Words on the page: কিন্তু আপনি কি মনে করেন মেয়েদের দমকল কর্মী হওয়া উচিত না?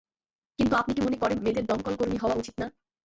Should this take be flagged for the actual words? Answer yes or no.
no